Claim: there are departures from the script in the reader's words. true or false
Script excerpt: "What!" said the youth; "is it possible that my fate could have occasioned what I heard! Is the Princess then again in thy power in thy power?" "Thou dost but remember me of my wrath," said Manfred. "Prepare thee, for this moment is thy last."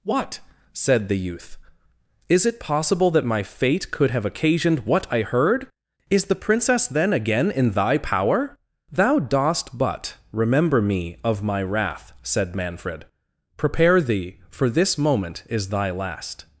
true